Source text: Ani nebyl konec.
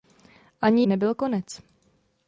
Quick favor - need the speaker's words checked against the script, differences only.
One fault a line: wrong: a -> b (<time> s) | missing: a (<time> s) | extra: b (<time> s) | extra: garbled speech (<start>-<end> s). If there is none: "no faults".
no faults